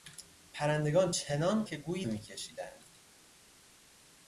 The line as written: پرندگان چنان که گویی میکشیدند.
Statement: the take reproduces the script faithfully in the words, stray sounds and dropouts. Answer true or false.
true